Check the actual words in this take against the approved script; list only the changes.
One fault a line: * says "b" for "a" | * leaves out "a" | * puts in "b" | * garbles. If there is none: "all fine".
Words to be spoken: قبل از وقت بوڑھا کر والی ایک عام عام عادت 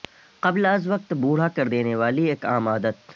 * puts in "دینے"
* leaves out "عام"